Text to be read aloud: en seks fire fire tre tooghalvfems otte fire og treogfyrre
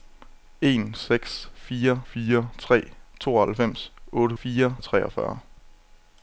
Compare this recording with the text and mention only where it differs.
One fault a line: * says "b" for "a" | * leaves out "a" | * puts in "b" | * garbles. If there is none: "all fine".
all fine